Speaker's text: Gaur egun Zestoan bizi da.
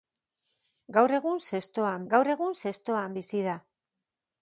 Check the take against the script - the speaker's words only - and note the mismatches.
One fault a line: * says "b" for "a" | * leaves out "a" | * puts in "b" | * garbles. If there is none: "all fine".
* puts in "gaur egun Zestoan"